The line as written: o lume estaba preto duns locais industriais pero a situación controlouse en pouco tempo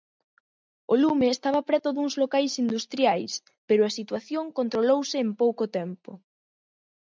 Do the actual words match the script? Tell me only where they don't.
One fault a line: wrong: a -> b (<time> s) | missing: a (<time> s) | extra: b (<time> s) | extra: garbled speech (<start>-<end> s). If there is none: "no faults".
no faults